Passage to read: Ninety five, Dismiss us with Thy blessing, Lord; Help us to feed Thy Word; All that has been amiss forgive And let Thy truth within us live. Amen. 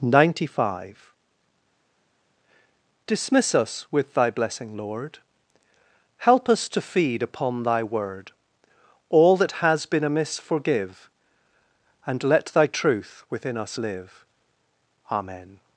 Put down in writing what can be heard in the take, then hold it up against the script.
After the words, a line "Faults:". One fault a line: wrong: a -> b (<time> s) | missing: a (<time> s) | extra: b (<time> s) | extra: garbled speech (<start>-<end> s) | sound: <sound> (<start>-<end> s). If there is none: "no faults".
Ninety five, Dismiss us with Thy blessing, Lord; Help us to feed upon Thy Word; All that has been amiss forgive And let Thy truth within us live. Amen.
Faults:
extra: upon (7.2 s)